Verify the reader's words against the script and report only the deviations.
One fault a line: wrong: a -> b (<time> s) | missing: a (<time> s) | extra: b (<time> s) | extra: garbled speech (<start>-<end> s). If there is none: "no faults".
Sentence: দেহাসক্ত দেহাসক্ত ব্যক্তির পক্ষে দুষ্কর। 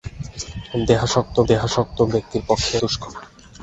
no faults